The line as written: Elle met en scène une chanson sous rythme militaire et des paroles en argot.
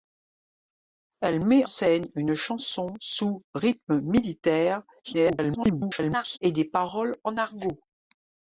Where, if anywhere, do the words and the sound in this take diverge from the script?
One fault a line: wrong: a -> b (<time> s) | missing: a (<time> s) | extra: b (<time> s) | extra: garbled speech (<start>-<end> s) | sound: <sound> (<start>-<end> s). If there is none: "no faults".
missing: en (1.6 s)
extra: garbled speech (5.0-6.4 s)